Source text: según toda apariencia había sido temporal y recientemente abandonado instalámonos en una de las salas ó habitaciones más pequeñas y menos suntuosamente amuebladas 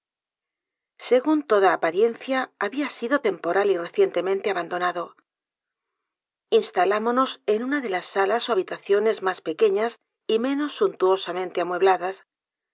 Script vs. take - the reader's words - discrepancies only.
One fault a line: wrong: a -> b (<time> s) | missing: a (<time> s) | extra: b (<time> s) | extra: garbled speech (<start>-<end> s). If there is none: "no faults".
no faults